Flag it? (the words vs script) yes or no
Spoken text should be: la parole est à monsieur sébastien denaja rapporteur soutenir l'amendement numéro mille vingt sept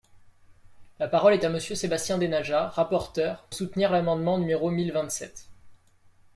no